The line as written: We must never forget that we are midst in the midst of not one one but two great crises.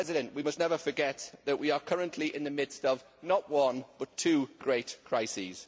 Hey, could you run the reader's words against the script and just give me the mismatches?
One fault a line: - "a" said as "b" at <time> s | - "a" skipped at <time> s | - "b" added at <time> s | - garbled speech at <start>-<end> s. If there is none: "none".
- "midst" said as "currently" at 1.8 s
- "one" skipped at 3.8 s